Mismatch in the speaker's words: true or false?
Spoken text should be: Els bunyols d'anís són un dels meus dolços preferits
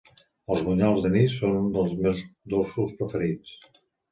false